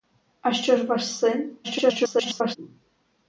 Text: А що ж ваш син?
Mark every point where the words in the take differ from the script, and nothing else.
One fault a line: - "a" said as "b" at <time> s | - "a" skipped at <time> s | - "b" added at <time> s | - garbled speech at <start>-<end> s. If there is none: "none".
- garbled speech at 1.6-2.6 s